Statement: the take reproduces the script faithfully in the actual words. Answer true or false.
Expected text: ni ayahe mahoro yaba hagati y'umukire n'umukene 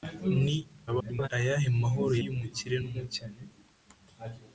false